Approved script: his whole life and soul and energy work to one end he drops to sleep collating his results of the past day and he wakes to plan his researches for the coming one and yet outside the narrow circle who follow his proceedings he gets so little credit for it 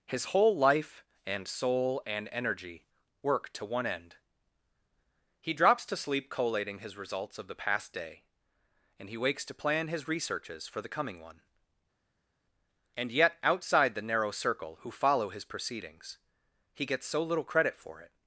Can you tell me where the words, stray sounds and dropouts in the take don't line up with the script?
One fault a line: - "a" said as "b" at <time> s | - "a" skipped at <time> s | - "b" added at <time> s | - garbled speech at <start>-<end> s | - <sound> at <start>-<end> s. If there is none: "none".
none